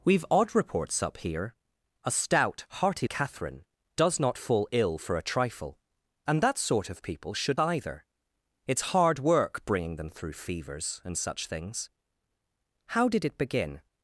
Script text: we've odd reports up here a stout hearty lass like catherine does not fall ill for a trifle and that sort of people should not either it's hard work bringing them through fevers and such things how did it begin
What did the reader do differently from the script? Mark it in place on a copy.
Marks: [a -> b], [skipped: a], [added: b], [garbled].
we've odd reports up here a stout hearty [skipped: lass like] catherine does not fall ill for a trifle and that sort of people should [skipped: not] either it's hard work bringing them through fevers and such things how did it begin